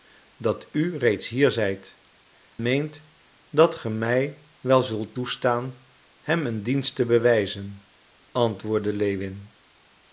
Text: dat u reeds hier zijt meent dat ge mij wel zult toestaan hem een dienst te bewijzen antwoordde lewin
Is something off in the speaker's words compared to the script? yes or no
no